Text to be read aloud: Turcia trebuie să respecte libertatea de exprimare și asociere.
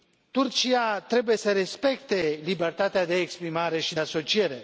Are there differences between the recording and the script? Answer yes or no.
no